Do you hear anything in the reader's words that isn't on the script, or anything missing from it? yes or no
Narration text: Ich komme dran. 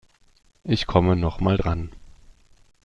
yes